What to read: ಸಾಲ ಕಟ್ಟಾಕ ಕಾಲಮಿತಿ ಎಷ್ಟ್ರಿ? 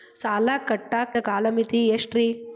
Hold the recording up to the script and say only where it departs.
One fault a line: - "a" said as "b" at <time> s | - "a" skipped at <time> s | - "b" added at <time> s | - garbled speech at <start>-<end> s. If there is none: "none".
none